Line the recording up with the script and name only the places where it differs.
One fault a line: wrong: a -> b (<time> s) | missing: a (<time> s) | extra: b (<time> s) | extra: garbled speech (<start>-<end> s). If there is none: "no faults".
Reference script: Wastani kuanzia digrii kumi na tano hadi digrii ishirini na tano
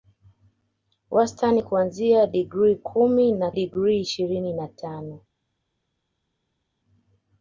missing: tano hadi (3.5 s)